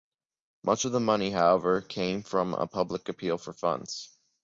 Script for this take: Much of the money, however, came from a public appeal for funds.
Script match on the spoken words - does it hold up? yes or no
yes